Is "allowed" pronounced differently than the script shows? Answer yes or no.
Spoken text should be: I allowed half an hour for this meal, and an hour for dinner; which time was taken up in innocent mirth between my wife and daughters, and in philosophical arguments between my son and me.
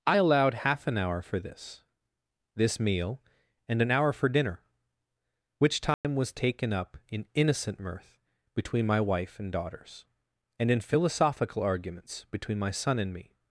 no